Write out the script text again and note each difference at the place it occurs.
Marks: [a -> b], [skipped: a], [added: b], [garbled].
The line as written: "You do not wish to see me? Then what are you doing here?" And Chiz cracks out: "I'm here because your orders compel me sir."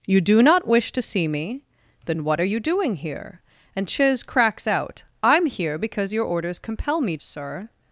"You do not wish to see me? Then what are you doing here?" And Chiz cracks out: "I'm here because your orders compel me sir."